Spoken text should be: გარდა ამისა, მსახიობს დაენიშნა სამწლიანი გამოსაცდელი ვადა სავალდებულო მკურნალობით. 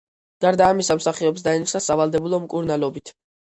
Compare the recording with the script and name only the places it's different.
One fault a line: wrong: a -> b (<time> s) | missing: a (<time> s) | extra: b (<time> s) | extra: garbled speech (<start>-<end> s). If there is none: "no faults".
missing: სამწლიანი გამოსაცდელი ვადა (1.8 s)